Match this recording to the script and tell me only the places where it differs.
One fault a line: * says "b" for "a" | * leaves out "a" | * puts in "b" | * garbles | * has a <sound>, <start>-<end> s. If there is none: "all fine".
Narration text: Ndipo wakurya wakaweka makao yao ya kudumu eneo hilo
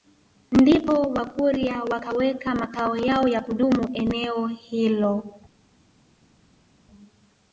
all fine